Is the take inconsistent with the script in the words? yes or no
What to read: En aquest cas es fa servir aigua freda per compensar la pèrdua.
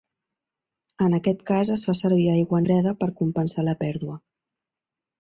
no